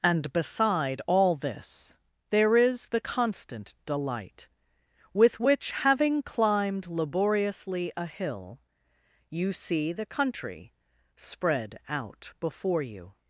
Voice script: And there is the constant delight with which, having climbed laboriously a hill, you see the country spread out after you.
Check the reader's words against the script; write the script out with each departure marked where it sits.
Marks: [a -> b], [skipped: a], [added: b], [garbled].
And [added: beside all this] there is the constant delight with which, having climbed laboriously a hill, you see the country spread out [after -> before] you.